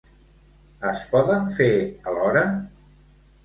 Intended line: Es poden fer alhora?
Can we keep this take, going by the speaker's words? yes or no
yes